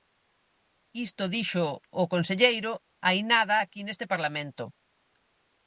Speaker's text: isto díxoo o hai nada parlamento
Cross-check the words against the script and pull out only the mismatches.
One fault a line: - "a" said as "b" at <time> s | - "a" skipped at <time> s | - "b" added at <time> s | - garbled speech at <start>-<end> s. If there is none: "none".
- "conselleiro" added at 2.1 s
- "aquí neste" added at 3.6 s